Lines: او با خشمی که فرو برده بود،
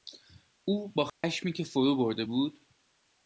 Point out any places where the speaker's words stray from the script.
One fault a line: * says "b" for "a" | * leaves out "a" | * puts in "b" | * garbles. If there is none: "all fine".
all fine